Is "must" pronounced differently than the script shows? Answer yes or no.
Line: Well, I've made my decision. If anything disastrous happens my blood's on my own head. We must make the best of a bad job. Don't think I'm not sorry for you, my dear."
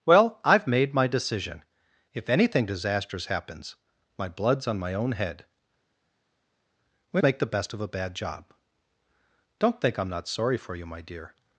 yes